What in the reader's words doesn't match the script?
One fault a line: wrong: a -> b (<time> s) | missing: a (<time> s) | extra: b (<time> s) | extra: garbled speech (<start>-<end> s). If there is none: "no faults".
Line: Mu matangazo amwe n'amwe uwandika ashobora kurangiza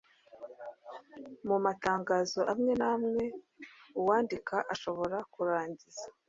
no faults